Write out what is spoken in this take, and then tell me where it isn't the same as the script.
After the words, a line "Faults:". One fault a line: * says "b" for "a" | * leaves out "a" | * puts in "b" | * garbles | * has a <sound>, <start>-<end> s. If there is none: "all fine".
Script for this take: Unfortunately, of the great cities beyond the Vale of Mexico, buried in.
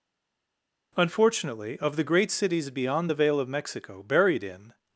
Unfortunately, of the great cities beyond the Vale of Mexico, buried in.
Faults:
all fine